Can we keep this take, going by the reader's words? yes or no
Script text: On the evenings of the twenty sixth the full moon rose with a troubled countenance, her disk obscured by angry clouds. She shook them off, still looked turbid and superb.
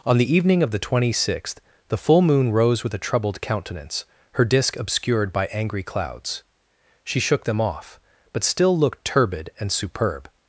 no